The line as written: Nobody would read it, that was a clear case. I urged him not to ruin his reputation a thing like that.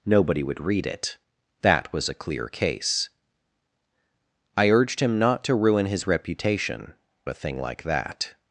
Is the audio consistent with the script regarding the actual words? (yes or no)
yes